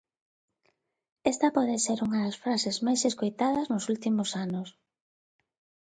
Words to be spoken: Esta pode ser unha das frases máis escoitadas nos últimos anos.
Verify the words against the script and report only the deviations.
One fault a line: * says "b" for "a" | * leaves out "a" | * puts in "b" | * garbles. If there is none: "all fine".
all fine